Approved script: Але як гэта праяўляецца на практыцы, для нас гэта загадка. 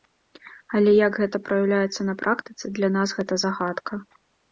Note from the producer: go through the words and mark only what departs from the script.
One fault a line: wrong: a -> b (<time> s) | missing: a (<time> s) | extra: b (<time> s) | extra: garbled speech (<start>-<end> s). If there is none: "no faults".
no faults